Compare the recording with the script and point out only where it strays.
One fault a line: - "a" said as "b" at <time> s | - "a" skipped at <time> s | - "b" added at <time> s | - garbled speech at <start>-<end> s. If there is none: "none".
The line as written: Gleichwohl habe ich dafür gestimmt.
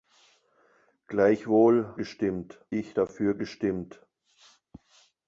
- "habe" said as "gestimmt" at 1.9 s